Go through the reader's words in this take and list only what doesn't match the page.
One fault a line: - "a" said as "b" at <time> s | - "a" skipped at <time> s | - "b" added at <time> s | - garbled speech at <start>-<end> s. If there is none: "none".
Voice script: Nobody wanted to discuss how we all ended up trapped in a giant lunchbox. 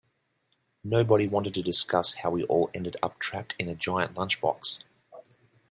none